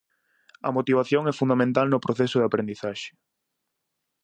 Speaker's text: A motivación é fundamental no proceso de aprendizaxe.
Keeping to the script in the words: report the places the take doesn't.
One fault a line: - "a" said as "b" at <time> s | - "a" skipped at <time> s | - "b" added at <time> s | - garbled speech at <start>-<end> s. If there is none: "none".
none